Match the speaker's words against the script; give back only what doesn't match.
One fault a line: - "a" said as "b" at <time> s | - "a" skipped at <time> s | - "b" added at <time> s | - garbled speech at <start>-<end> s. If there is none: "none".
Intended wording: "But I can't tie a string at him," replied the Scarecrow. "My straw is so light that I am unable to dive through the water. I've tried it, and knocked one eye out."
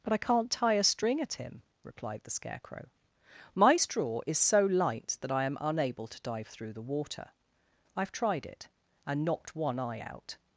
none